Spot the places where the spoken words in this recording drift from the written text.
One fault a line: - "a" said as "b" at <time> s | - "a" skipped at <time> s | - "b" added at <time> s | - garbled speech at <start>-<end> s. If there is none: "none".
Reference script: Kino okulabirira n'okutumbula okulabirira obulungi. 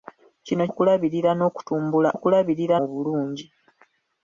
none